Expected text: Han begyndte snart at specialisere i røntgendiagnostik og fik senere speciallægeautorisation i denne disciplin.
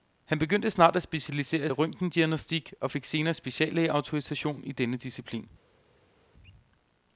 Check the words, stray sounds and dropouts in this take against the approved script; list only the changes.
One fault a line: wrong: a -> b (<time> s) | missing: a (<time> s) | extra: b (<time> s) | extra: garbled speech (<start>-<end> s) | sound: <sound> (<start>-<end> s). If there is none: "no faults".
no faults